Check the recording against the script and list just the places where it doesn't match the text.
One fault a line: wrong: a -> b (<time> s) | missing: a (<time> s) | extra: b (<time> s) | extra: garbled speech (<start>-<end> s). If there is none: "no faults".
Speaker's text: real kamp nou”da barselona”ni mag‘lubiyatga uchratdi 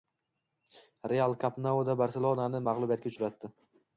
no faults